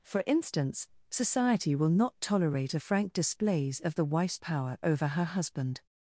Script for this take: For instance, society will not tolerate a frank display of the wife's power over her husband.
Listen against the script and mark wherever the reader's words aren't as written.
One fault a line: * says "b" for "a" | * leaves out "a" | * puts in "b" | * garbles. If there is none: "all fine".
* says "displays" for "display"